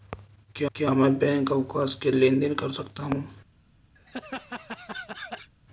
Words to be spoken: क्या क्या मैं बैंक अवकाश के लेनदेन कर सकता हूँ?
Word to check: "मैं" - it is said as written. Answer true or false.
true